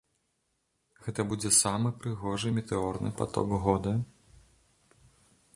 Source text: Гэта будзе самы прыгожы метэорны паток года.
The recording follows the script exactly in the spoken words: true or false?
true